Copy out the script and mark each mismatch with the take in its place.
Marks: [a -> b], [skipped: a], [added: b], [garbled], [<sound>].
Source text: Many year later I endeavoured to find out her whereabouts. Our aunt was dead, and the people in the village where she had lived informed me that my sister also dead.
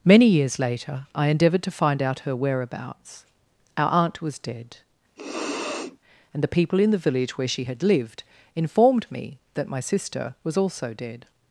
Many [year -> years] later I endeavoured to find out her whereabouts. Our aunt was dead, [sniff] and the people in the village where she had lived informed me that my sister [added: was] also dead.